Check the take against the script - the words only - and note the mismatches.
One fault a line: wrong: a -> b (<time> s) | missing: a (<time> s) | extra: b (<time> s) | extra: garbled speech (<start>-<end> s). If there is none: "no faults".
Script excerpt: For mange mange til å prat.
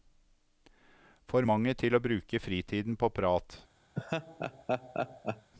missing: mange (1.7 s)
extra: bruke fritiden på (2.0 s)